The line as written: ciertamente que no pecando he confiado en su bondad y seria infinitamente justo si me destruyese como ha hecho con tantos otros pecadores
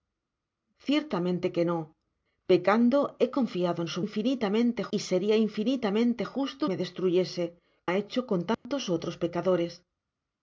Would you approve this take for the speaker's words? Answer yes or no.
no